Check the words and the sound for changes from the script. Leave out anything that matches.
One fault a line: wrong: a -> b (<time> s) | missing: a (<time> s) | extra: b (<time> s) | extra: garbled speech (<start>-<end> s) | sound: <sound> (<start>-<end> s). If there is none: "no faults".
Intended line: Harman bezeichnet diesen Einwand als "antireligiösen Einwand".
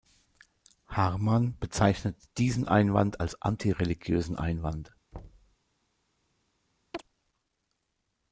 sound: thud (5.1-5.6 s)
sound: chirp (6.9-7.0 s)